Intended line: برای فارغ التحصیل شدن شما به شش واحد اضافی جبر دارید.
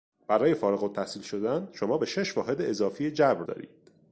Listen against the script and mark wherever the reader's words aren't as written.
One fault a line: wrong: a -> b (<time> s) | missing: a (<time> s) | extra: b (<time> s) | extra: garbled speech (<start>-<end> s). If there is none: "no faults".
no faults